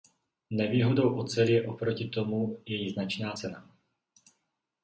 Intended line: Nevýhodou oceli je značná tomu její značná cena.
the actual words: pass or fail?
fail